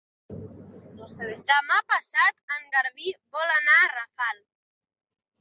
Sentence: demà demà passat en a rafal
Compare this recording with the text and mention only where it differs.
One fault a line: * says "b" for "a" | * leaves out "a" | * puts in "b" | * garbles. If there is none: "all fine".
* leaves out "demà"
* puts in "garbí vol anar"